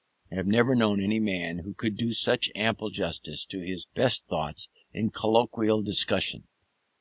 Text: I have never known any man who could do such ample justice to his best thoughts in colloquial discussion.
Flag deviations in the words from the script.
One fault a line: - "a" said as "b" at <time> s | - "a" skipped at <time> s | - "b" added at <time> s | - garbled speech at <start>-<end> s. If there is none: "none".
none